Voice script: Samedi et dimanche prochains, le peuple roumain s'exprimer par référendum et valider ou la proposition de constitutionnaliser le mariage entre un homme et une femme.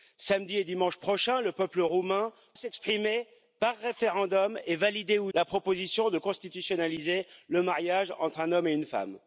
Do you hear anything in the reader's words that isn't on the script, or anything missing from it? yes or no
no